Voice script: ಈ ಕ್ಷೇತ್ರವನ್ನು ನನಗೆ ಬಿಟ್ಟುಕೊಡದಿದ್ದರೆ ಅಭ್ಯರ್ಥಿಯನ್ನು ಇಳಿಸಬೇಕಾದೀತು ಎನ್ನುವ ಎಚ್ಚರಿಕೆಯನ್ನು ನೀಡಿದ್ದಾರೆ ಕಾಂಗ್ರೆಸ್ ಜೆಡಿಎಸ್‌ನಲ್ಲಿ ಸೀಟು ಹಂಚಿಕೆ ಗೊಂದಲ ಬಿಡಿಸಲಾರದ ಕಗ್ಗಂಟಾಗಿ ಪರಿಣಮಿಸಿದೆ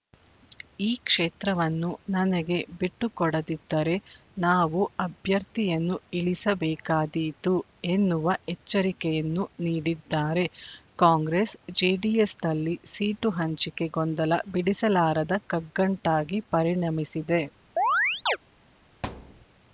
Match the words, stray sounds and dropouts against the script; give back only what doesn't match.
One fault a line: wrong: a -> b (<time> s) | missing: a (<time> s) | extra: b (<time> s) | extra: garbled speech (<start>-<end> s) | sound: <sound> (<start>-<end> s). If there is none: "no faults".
extra: ನಾವು (4.4 s)
sound: chirp (17.8-18.4 s)
sound: thud (19.0-19.5 s)